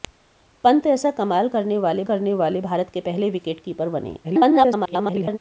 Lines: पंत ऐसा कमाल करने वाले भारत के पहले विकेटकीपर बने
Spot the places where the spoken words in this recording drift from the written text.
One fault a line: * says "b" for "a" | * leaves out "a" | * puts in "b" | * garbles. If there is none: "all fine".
* puts in "करने वाले"
* garbles